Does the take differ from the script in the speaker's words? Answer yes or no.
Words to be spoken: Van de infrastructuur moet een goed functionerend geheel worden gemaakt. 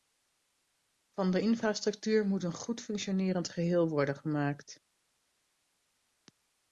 no